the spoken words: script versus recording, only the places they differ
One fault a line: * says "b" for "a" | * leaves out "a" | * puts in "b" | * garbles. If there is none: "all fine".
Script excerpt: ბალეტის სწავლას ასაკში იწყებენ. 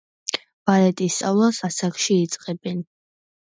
all fine